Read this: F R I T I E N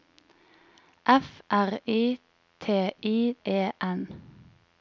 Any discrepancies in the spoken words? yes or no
no